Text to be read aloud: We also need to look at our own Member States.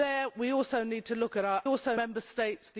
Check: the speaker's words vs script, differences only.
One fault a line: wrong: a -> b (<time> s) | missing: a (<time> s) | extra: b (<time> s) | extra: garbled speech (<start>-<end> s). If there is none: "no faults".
wrong: own -> also (1.6 s)